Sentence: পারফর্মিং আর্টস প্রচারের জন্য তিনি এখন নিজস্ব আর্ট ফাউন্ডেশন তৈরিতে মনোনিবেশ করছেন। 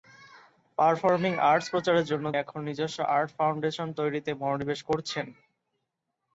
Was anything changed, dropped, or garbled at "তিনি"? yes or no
yes